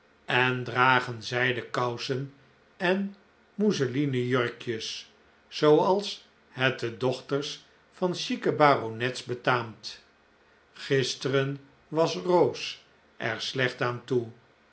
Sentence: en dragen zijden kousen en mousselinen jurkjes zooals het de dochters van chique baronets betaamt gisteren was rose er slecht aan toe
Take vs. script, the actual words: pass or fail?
pass